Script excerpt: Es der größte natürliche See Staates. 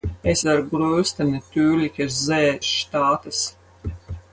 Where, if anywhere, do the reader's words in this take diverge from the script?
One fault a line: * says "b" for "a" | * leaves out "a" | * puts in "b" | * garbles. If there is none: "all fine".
all fine